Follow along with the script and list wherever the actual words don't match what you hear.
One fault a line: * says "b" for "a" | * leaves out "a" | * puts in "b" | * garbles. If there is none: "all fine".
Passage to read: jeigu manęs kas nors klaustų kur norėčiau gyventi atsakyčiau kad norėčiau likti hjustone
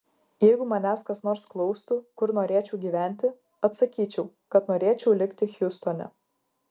all fine